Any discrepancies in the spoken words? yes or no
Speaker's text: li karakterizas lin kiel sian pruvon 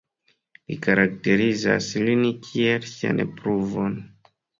no